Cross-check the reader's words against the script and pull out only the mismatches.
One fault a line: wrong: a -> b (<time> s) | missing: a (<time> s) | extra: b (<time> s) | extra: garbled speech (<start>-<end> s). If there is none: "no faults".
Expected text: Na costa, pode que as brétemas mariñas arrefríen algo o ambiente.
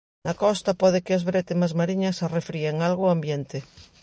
no faults